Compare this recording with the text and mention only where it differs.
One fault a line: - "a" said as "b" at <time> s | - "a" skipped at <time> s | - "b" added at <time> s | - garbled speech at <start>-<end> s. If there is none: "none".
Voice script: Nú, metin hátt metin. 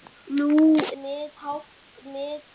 none